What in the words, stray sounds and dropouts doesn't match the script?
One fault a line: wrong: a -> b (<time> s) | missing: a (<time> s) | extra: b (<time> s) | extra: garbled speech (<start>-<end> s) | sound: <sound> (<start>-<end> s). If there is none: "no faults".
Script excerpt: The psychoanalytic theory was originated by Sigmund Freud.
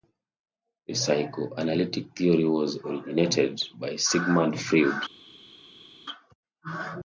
no faults